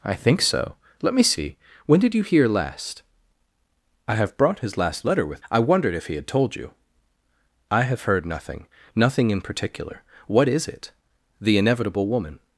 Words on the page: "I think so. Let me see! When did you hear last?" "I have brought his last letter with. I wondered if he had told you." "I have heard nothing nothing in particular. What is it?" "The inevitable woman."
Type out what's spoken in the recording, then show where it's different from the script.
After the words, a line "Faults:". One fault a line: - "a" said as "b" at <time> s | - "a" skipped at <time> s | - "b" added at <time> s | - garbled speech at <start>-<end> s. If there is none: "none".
"I think so. Let me see! When did you hear last?" "I have brought his last letter with. I wondered if he had told you." "I have heard nothing nothing in particular. What is it?" "The inevitable woman."
Faults:
none